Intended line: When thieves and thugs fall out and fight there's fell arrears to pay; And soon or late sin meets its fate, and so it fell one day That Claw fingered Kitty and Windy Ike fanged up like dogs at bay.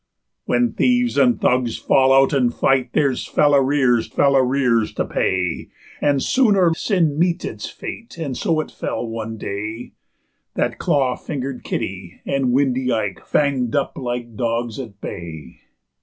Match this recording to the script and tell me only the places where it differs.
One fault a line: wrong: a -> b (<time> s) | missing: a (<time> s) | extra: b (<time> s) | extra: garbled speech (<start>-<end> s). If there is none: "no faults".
extra: fell arrears (4.1 s)
missing: late (6.7 s)